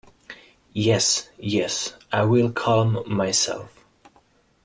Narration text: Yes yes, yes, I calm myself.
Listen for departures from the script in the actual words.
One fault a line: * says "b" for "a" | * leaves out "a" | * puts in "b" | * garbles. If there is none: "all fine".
* says "I will" for "yes I"